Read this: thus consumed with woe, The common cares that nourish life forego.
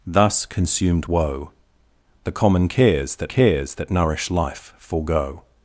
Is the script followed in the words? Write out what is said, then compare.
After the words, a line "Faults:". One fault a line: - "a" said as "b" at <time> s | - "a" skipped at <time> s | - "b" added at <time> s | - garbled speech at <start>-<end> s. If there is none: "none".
thus consumed woe, The common cares that cares that nourish life forego.
Faults:
- "with" skipped at 1.1 s
- "cares that" added at 3.3 s